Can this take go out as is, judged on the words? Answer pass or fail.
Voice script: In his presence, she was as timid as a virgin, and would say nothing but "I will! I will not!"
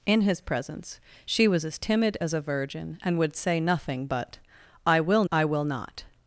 pass